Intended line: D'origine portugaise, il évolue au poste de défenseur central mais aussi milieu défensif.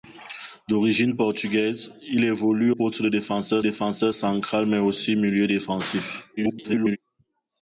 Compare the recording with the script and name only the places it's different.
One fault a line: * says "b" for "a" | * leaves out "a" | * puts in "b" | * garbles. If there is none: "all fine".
* leaves out "au"
* puts in "défenseur"
* garbles